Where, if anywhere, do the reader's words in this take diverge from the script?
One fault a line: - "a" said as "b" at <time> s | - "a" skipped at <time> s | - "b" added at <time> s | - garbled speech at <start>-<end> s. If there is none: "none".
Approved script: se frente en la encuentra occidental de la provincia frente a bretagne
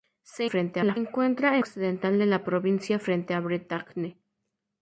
none